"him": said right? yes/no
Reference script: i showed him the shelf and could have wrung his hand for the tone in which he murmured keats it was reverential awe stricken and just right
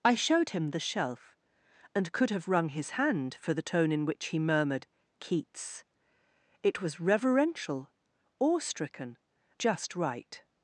yes